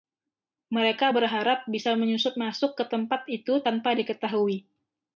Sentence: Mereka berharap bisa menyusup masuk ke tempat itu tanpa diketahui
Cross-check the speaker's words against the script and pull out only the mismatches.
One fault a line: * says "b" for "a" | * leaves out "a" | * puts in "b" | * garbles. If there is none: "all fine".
all fine